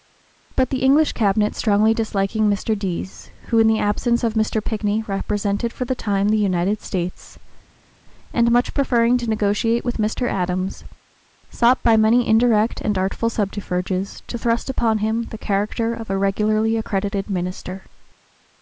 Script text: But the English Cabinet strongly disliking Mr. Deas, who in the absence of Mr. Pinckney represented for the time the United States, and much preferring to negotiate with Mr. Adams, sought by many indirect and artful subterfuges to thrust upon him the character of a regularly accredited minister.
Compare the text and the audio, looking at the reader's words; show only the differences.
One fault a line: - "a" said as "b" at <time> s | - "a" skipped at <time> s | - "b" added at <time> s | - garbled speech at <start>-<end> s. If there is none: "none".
none